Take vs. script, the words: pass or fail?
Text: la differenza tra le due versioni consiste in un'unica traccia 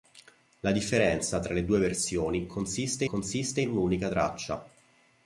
fail